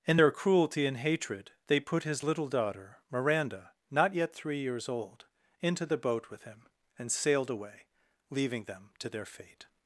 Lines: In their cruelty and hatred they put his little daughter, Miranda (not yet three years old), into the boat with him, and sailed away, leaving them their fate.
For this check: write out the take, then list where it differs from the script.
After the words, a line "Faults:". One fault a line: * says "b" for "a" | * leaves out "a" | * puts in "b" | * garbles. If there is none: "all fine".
In their cruelty and hatred they put his little daughter, Miranda (not yet three years old), into the boat with him, and sailed away, leaving them to their fate.
Faults:
* puts in "to"